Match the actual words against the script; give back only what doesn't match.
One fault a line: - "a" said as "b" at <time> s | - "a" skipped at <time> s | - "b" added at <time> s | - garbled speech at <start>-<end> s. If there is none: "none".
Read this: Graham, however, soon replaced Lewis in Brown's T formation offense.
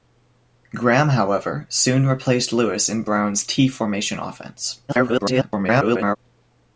- garbled speech at 4.9-6.2 s